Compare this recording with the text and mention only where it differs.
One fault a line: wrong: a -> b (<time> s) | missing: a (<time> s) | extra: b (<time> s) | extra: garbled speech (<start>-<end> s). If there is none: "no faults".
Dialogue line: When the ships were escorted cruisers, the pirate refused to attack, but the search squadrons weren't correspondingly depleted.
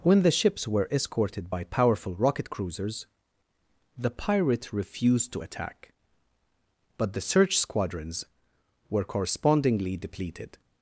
extra: by powerful rocket (1.5 s)
wrong: weren't -> were (8.9 s)